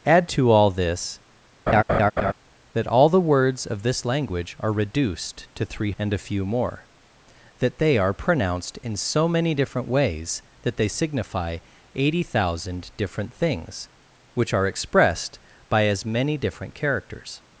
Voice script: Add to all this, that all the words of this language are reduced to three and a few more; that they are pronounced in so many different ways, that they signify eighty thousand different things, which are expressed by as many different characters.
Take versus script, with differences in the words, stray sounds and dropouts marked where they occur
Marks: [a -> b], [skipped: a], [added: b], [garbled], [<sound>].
Add to all this, [laugh] that all the words of this language are reduced to three and a few more; that they are pronounced in so many different ways, that they signify eighty thousand different things, which are expressed by as many different characters.